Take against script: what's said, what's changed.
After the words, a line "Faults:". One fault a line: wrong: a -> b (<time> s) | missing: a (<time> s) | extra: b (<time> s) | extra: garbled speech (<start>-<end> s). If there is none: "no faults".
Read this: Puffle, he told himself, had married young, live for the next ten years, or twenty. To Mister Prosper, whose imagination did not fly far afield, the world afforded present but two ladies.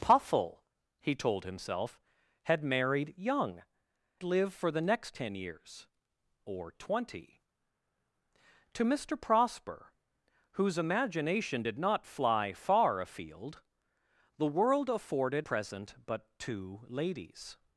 Puffle, he told himself, had married young, live for the next ten years, or twenty. To Mister Prosper, whose imagination did not fly far afield, the world afforded present but two ladies.
Faults:
no faults